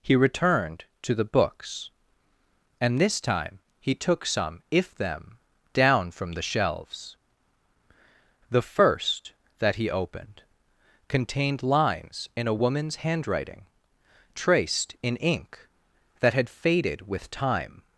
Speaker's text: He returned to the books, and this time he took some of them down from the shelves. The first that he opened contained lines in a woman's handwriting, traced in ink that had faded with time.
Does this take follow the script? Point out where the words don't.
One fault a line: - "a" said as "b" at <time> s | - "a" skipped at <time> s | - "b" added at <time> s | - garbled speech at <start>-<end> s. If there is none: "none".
- "of" said as "if" at 4.7 s